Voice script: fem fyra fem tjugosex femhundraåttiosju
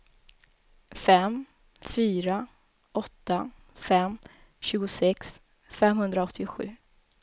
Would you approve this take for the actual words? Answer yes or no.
no